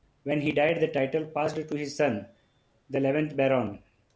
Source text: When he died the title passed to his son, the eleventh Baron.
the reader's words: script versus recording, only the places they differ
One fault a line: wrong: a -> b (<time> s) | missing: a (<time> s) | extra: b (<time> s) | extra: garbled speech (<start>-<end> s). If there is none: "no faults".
no faults